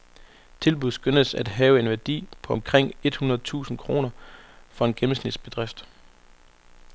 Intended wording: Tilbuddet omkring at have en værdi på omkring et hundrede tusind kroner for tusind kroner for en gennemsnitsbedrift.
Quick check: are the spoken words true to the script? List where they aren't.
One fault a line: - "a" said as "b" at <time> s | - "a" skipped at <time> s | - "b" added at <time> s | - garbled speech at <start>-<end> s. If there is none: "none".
- "omkring" said as "skønnes" at 0.9 s
- "tusind kroner for" skipped at 4.8 s